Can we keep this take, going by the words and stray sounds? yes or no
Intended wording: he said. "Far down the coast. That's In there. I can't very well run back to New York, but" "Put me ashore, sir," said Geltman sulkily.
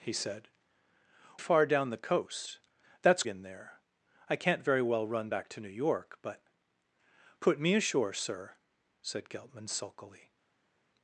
yes